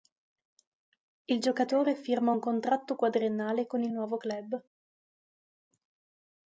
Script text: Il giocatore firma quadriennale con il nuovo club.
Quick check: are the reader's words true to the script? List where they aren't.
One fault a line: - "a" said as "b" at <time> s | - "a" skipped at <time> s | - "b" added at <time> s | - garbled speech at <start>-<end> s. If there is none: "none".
- "un contratto" added at 2.3 s